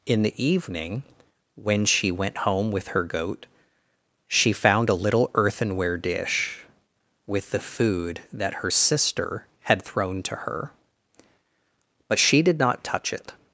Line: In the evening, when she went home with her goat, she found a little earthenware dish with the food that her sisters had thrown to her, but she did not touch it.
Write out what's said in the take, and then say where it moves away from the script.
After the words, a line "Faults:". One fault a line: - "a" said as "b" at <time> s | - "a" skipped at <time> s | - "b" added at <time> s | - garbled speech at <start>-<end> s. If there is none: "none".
In the evening, when she went home with her goat, she found a little earthenware dish with the food that her sister had thrown to her, but she did not touch it.
Faults:
- "sisters" said as "sister" at 8.7 s